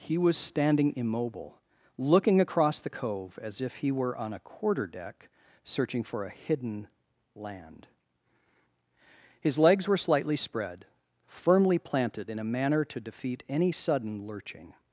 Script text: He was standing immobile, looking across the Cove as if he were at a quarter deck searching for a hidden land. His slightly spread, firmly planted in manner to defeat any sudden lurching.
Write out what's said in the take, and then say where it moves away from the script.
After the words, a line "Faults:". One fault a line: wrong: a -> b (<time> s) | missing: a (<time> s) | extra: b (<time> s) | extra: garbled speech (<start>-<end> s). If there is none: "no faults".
He was standing immobile, looking across the Cove as if he were on a quarter deck searching for a hidden land. His legs were slightly spread, firmly planted in a manner to defeat any sudden lurching.
Faults:
wrong: at -> on (4.2 s)
extra: legs were (9.6 s)
extra: a (12.4 s)